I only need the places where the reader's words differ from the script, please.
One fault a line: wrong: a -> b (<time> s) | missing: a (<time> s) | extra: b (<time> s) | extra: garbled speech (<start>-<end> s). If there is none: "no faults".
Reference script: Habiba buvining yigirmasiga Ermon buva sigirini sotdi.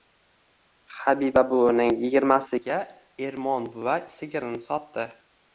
no faults